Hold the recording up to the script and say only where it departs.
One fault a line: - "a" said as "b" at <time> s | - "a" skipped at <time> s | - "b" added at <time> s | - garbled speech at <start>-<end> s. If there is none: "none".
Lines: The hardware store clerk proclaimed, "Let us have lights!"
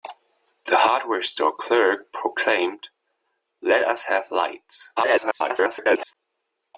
- garbled speech at 5.0-6.2 s